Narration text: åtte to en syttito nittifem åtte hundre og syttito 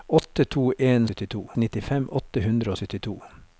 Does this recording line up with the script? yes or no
yes